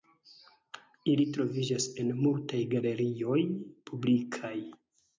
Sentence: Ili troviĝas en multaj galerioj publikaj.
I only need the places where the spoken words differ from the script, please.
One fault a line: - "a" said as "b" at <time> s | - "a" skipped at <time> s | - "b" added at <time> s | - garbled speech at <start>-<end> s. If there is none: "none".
none